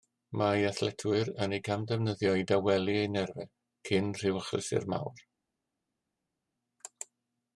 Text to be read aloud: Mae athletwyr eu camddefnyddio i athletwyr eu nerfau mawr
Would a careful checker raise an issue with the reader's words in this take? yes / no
yes